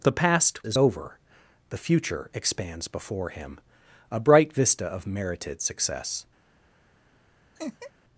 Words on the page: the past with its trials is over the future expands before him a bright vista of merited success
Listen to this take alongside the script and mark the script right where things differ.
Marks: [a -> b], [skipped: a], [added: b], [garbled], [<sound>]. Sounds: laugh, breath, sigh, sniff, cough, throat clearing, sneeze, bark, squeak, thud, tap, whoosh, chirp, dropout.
the past [skipped: with its trials] is over the future expands before him a bright vista of merited success [laugh]